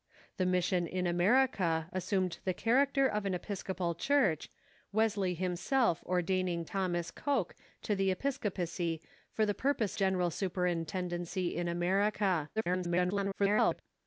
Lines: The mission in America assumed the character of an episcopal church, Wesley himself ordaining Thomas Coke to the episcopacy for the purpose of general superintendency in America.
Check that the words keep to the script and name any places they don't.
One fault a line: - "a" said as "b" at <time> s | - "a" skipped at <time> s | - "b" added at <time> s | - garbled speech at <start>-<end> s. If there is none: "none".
- "of" skipped at 10.0 s
- garbled speech at 12.6-13.8 s